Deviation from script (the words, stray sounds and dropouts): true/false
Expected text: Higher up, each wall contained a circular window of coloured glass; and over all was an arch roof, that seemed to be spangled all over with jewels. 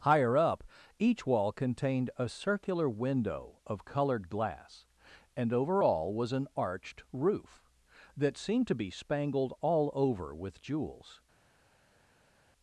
true